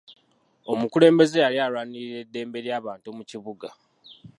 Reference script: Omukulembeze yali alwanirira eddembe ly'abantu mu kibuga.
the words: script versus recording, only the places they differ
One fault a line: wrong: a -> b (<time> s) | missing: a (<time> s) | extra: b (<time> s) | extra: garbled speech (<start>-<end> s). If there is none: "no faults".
no faults